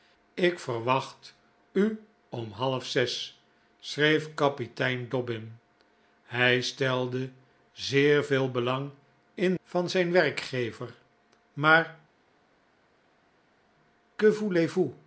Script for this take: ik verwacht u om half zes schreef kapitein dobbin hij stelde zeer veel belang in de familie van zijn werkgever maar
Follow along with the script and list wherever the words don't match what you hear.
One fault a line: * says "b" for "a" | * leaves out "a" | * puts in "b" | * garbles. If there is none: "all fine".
* leaves out "de familie"